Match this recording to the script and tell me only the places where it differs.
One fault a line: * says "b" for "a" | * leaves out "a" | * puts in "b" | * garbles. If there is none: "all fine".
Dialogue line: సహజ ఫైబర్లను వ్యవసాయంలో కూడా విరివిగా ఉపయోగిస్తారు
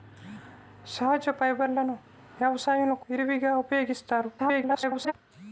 * leaves out "కూడా"
* garbles